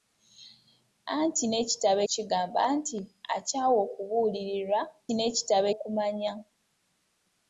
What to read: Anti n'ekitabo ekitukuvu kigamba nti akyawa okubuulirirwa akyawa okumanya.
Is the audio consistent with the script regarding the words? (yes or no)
no